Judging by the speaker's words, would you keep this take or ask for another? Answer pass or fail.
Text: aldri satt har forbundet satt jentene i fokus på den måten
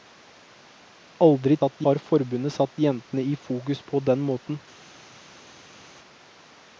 pass